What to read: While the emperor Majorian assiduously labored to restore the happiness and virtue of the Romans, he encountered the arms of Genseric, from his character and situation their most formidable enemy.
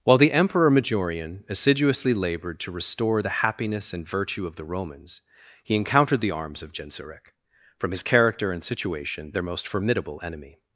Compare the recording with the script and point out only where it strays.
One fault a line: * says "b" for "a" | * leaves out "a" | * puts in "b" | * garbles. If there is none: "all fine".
all fine